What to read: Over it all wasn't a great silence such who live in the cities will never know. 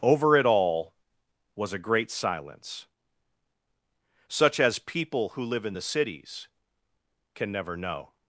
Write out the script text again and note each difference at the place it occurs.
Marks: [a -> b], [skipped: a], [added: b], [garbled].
Over it all [wasn't -> was] a great silence such [added: as people] who live in the cities [will -> can] never know.